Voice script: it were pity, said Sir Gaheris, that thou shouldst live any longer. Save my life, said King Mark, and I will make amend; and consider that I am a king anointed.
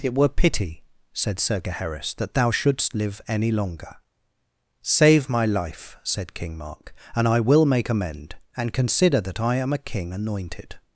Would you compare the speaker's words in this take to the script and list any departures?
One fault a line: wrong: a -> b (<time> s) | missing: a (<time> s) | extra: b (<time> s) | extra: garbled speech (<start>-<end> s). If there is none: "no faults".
no faults